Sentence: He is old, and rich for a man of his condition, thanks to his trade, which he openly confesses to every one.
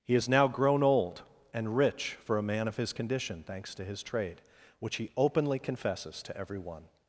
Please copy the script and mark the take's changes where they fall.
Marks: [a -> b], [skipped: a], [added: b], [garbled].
He is [added: now grown] old, and rich for a man of his condition, thanks to his trade, which he openly confesses to every one.